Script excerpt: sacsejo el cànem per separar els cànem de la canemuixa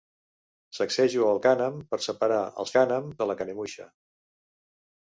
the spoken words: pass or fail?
pass